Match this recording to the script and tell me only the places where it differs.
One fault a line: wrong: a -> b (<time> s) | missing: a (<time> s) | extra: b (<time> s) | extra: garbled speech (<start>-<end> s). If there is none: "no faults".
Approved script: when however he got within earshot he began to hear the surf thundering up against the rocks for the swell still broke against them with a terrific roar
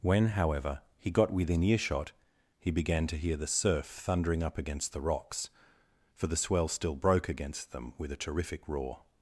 no faults